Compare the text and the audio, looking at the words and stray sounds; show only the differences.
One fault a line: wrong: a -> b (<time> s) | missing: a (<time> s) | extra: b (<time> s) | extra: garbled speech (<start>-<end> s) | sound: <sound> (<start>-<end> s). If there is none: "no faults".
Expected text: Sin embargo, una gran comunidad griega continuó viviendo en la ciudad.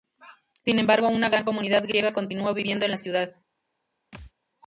sound: thud (4.1-4.3 s)